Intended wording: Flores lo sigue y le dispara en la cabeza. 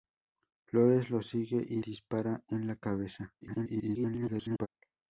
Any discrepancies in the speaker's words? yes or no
yes